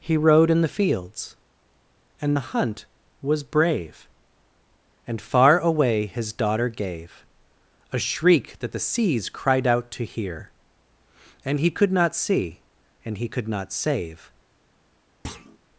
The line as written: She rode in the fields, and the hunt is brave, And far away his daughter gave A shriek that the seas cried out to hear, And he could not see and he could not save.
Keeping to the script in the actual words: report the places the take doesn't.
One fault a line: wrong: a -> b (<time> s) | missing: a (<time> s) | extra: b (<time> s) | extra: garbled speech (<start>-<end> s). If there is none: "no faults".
wrong: She -> He (0.0 s)
wrong: is -> was (3.2 s)